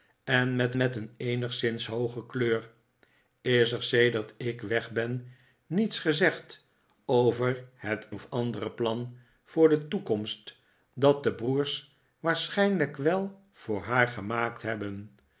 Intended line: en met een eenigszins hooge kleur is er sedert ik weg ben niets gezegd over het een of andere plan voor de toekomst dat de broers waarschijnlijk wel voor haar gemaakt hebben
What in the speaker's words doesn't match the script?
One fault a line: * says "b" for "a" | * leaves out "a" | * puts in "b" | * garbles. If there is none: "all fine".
* puts in "met"
* leaves out "een"